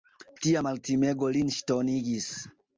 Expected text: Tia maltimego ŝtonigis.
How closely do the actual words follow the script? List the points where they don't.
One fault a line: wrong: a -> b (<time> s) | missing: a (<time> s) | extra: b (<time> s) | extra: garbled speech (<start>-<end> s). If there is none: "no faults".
extra: lin (1.4 s)